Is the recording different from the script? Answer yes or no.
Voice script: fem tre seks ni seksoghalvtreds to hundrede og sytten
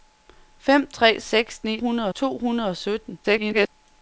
yes